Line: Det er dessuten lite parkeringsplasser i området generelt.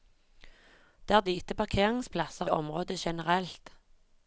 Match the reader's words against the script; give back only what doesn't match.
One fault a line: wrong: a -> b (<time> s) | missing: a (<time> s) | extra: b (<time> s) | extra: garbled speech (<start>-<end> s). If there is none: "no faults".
missing: dessuten (1.2 s)
missing: i (2.5 s)